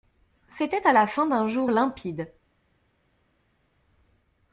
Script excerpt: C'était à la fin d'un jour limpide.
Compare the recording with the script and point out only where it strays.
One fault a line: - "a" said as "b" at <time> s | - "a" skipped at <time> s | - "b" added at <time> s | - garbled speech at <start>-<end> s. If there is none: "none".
none